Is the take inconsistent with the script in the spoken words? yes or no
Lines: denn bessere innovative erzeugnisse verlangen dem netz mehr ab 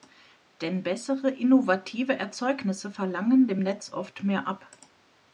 yes